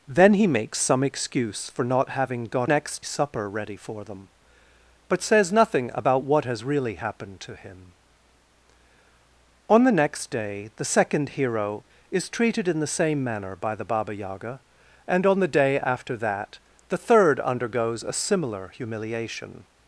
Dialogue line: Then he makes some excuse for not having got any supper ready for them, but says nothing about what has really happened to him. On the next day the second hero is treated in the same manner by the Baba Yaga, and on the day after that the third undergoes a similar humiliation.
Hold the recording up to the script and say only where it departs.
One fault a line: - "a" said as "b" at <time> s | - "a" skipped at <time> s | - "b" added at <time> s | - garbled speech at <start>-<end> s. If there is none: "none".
- "any" said as "next" at 2.6 s